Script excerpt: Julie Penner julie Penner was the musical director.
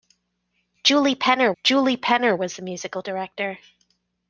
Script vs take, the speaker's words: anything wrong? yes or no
no